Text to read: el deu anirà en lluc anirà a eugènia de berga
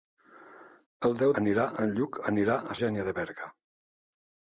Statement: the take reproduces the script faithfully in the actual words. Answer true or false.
true